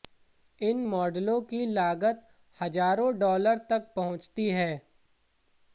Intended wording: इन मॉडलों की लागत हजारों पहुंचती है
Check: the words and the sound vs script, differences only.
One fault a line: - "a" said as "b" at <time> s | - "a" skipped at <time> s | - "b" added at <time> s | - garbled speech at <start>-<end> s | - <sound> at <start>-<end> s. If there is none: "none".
- "डॉलर तक" added at 3.2 s